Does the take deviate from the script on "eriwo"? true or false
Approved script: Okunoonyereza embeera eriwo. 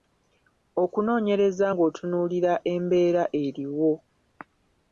false